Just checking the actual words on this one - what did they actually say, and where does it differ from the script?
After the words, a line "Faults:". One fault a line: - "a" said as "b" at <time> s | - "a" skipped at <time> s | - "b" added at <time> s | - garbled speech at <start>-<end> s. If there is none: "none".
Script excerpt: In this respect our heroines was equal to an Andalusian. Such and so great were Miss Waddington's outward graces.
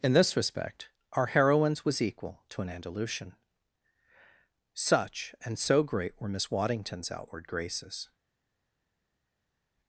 In this respect our heroines was equal to an Andalusian. Such and so great were Miss Waddington's outward graces.
Faults:
none